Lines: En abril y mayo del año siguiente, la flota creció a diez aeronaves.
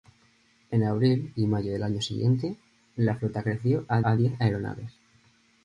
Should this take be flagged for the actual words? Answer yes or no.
yes